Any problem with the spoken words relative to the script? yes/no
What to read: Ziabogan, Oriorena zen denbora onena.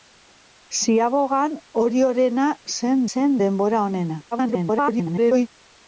yes